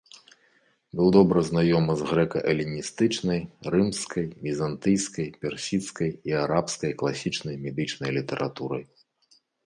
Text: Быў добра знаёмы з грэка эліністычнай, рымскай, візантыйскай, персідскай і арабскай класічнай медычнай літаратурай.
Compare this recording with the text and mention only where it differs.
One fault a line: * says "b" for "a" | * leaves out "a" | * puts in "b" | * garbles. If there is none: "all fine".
all fine